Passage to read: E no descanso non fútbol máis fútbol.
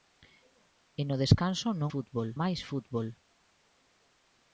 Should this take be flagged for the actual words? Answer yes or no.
no